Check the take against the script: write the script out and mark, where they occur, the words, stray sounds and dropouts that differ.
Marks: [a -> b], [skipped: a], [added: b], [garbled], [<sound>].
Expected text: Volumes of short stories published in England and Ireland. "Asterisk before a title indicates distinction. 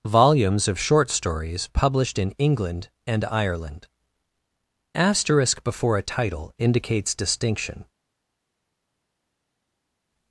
Volumes of short stories published in England and Ireland. "Asterisk before a title indicates distinction.